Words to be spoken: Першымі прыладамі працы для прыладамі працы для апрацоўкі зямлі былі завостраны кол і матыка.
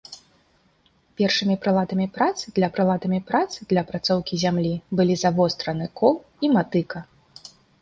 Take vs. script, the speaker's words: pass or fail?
pass